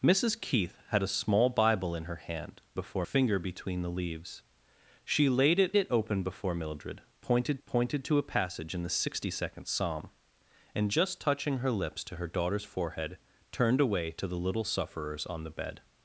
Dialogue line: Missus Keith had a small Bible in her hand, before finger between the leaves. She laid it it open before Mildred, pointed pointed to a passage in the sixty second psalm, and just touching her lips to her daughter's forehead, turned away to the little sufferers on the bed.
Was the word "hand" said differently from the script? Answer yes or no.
no